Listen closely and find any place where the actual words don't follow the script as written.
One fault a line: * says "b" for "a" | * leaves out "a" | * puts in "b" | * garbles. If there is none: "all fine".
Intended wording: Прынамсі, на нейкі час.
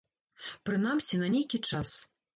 all fine